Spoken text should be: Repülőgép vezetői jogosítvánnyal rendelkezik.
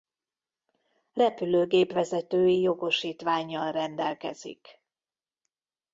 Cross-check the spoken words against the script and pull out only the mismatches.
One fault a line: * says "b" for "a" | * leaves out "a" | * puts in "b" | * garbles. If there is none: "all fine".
all fine